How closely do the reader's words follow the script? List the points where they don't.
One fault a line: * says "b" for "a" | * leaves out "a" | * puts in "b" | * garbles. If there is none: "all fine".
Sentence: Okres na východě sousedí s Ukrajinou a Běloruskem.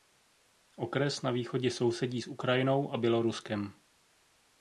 all fine